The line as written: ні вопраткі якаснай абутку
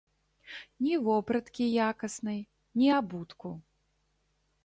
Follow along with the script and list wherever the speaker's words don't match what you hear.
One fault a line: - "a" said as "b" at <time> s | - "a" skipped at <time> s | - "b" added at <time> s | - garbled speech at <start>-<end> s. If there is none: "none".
- "ні" added at 2.7 s